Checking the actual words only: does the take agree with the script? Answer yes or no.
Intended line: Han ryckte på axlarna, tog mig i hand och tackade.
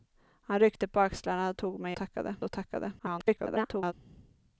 no